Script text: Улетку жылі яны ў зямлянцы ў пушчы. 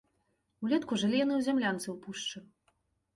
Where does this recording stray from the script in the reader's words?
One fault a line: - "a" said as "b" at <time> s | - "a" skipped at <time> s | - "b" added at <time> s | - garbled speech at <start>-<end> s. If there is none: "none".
none